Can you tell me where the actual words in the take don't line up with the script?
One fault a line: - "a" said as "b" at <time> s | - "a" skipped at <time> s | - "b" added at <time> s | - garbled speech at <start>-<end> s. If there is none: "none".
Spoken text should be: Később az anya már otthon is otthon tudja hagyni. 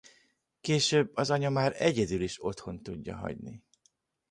- "otthon" said as "egyedül" at 1.8 s